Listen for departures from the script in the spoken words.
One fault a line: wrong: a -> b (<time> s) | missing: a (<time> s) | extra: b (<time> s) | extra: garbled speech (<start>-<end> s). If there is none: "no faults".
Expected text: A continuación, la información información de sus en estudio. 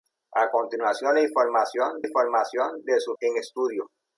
no faults